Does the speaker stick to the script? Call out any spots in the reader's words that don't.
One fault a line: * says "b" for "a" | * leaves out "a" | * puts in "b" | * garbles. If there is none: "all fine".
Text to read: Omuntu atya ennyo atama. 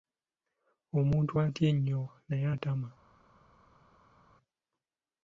* puts in "naye"